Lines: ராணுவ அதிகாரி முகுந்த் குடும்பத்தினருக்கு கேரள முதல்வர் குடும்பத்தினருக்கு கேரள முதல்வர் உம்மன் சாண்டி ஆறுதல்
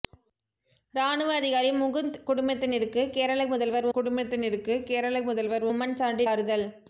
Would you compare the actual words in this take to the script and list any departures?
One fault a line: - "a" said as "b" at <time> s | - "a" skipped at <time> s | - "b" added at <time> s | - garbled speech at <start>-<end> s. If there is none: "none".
none